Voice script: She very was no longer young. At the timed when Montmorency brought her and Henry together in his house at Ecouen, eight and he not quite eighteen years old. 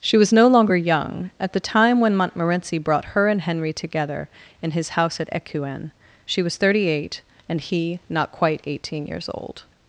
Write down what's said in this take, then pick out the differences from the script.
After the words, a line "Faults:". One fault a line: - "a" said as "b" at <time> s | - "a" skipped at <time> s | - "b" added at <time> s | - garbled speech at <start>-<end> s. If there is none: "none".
She was no longer young. At the time when Montmorency brought her and Henry together in his house at Ecouen, she was thirty eight and he not quite eighteen years old.
Faults:
- "very" skipped at 0.2 s
- "timed" said as "time" at 1.6 s
- "she was thirty" added at 6.2 s